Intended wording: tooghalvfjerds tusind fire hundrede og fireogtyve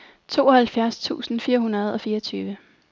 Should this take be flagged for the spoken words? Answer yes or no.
no